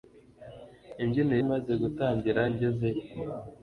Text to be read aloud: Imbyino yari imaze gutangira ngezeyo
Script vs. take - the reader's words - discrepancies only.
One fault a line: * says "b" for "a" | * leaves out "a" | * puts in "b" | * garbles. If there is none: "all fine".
* leaves out "yari"